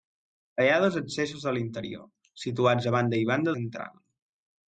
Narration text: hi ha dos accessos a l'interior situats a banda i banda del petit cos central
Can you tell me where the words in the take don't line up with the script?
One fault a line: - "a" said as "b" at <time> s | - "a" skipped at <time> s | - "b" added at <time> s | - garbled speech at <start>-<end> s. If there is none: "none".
- "del petit cos" skipped at 3.5 s